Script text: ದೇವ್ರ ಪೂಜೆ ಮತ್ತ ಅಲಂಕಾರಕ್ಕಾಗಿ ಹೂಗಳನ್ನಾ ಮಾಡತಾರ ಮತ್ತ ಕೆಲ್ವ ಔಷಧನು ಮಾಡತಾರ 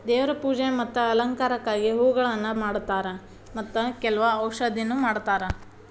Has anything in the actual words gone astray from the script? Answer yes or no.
no